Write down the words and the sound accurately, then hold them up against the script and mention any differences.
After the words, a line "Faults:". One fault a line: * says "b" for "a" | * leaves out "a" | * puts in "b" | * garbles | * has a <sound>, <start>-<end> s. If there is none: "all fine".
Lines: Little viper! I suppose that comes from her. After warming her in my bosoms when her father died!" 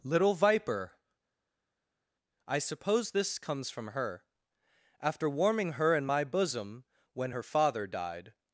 Little viper! I suppose this comes from her. After warming her in my bosom when her father died!"
Faults:
* says "this" for "that"
* says "bosom" for "bosoms"